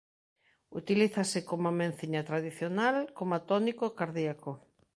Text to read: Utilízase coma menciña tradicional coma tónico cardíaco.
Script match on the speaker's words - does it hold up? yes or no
yes